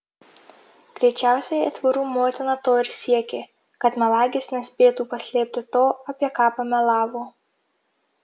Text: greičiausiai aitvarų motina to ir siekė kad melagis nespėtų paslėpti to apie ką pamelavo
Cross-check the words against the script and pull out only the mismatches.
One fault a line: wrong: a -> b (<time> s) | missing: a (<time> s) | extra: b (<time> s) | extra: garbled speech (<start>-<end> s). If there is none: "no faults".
no faults